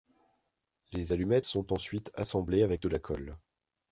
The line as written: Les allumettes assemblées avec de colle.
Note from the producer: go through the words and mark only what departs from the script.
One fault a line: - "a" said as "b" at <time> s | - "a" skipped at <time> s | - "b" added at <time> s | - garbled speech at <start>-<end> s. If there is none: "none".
- "sont ensuite" added at 1.4 s
- "la" added at 2.9 s